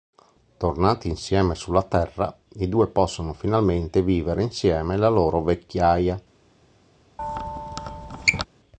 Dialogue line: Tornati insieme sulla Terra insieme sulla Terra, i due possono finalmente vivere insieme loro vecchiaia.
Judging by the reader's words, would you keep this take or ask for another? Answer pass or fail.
fail